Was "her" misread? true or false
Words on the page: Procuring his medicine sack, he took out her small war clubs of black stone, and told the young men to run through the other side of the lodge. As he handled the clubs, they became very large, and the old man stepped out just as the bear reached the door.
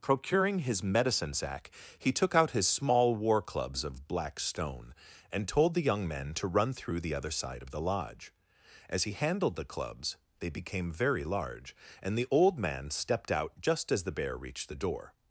true